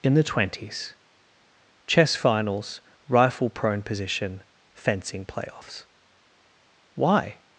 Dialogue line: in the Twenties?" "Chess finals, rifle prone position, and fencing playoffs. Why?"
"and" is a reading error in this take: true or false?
true